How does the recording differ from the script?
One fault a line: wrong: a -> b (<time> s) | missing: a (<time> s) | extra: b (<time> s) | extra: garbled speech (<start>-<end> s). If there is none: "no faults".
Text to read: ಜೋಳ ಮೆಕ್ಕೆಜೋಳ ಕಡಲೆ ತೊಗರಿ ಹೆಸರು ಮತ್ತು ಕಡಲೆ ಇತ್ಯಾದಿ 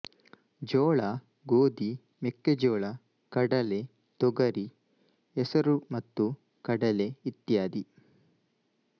extra: ಗೋಧಿ (1.4 s)